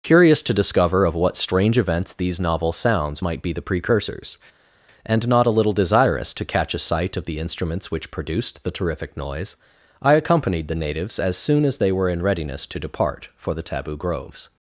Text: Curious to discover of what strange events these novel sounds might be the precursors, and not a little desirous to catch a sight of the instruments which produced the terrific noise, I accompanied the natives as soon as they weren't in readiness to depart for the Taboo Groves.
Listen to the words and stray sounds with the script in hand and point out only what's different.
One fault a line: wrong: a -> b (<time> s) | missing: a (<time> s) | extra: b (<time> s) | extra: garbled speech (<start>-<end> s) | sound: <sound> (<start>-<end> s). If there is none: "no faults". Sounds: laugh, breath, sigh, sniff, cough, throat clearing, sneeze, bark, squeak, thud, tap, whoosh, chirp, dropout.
wrong: weren't -> were (11.9 s)